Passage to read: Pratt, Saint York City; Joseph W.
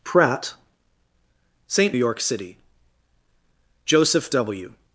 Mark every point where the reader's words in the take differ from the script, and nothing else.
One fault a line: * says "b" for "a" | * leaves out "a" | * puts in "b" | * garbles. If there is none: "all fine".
all fine